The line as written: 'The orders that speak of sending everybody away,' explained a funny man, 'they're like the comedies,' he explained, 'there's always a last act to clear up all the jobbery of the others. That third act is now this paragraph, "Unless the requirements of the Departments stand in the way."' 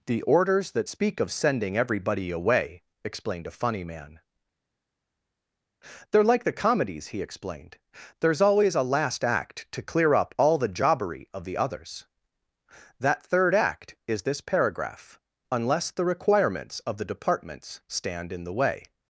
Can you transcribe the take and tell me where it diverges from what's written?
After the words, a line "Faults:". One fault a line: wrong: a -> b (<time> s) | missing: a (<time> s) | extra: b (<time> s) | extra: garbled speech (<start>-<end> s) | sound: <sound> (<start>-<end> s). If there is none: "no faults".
'The orders that speak of sending everybody away,' explained a funny man, 'they're like the comedies,' he explained, 'there's always a last act to clear up all the jobbery of the others. That third act is this paragraph, "Unless the requirements of the Departments stand in the way."'
Faults:
missing: now (14.2 s)